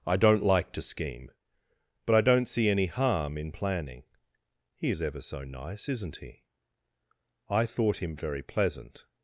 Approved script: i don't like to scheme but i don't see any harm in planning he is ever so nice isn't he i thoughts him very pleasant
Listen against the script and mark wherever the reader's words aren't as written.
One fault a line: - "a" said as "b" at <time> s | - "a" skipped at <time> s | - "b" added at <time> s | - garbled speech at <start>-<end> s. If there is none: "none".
- "thoughts" said as "thought" at 7.6 s